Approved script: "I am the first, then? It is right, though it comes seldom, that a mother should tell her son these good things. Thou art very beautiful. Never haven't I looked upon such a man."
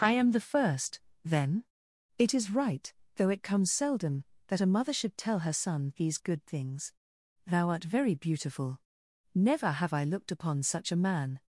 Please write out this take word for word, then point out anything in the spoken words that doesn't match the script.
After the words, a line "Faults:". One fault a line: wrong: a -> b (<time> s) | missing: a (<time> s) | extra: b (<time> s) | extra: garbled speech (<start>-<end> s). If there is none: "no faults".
"I am the first, then? It is right, though it comes seldom, that a mother should tell her son these good things. Thou art very beautiful. Never have I looked upon such a man."
Faults:
wrong: haven't -> have (9.7 s)